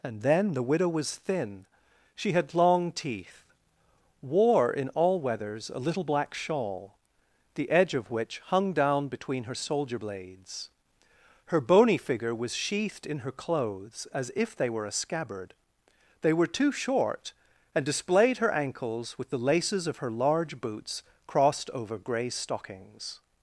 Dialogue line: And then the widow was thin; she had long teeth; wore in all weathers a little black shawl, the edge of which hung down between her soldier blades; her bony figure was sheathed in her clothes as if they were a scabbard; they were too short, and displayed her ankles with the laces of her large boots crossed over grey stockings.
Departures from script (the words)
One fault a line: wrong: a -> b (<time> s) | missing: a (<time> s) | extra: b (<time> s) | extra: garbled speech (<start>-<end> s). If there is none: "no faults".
no faults